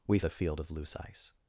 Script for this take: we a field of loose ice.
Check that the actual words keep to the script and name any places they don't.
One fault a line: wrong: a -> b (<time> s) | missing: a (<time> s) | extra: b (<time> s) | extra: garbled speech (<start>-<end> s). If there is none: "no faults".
no faults